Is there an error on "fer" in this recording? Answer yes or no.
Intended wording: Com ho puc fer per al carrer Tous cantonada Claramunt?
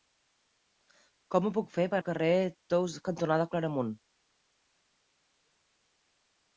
no